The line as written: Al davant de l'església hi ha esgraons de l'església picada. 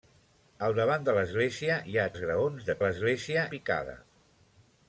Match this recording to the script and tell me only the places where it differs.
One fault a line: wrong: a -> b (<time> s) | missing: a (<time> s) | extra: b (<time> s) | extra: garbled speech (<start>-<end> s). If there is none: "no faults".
no faults